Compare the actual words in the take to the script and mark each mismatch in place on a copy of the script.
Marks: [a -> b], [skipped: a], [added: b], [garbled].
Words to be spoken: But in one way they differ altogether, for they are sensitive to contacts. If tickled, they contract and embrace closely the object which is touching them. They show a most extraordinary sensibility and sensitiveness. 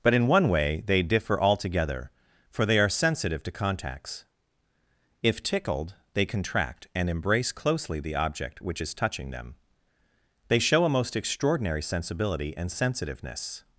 But in one way they differ altogether, for they are sensitive to contacts. If tickled, they contract and embrace closely the object which is touching them. They show a most extraordinary sensibility and sensitiveness.